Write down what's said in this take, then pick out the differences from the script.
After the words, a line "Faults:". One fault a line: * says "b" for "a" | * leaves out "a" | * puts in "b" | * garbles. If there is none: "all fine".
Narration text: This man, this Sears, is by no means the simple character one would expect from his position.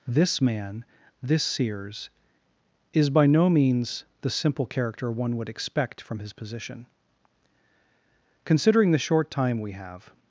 This man, this Sears, is by no means the simple character one would expect from his position. Considering the short time we have
Faults:
* puts in "Considering the short time we have"